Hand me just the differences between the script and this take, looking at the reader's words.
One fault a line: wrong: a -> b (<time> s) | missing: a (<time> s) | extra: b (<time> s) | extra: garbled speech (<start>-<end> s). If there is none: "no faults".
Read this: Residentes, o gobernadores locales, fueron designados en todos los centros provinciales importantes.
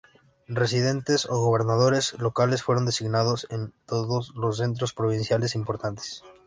no faults